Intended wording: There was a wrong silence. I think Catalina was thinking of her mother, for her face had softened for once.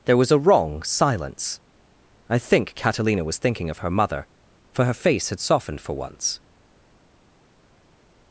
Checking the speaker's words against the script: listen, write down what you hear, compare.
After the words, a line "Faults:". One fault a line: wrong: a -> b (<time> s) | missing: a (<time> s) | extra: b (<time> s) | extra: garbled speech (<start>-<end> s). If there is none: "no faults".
There was a wrong silence. I think Catalina was thinking of her mother, for her face had softened for once.
Faults:
no faults